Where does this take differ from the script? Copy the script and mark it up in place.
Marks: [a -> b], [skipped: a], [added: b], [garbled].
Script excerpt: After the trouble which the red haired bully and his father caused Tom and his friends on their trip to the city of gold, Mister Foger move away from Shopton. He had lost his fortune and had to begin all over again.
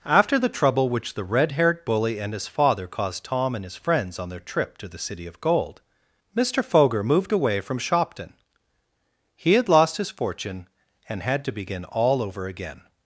After the trouble which the red haired bully and his father caused Tom and his friends on their trip to the city of gold, Mister Foger [move -> moved] away from Shopton. He had lost his fortune and had to begin all over again.